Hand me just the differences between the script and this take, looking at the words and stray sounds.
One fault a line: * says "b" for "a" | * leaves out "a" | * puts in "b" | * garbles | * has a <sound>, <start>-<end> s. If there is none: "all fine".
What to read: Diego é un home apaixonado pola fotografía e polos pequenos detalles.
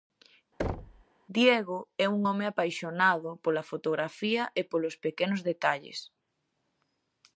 * has a thud, 0.6-1.0 s